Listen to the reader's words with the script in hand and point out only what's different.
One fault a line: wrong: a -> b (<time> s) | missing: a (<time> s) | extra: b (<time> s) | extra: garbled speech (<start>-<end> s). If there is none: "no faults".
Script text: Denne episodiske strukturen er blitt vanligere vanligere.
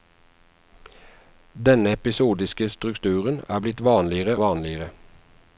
no faults